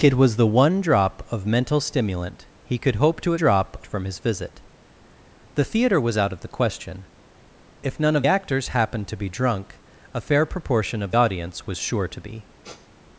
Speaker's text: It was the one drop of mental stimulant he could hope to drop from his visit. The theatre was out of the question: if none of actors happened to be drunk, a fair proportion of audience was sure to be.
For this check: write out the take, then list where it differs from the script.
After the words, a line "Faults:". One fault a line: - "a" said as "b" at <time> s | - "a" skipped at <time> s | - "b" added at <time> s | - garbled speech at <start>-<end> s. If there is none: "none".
It was the one drop of mental stimulant he could hope to drop from his visit. The theatre was out of the question: if none of actors happened to be drunk, a fair proportion of audience was sure to be.
Faults:
none